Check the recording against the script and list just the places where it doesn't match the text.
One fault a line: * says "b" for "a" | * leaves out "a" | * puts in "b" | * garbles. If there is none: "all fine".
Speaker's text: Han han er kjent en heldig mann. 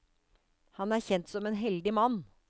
* leaves out "han"
* puts in "som"